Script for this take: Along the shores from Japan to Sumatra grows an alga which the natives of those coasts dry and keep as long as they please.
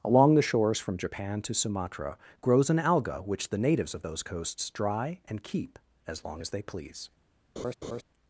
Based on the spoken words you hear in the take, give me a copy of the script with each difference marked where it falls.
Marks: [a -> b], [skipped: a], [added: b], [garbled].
Along the shores from Japan to Sumatra grows an alga which the natives of those coasts dry and keep as long as they please.